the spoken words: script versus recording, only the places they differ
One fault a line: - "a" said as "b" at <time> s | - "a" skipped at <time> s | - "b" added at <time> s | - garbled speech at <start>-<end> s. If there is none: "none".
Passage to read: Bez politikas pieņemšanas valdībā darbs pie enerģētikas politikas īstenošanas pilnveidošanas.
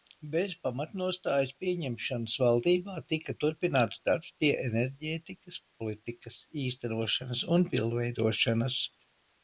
- "politikas" said as "pamatnostājas" at 0.7 s
- "tika turpināts" added at 3.1 s
- "un" added at 7.6 s